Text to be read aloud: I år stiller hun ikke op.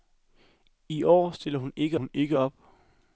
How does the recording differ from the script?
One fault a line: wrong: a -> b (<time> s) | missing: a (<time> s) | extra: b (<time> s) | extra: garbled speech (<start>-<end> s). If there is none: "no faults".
extra: hun ikke (2.0 s)